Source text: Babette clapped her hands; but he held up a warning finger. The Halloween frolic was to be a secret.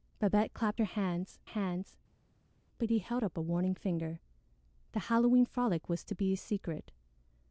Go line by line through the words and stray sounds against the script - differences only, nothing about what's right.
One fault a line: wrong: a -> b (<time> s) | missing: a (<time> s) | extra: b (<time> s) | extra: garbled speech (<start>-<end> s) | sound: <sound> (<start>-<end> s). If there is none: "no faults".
extra: hands (1.4 s)